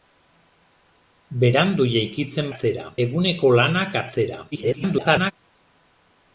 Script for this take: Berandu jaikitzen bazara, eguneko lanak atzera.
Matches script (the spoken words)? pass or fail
fail